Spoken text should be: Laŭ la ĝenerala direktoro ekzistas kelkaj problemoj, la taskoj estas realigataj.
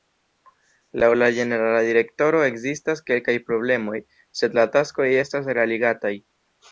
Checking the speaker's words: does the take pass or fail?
fail